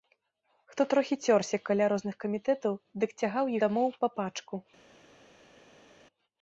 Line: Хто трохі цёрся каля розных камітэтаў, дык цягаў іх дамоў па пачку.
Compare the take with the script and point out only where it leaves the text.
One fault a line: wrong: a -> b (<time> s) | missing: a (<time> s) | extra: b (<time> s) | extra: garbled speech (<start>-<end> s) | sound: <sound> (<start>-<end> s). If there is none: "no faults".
missing: іх (3.5 s)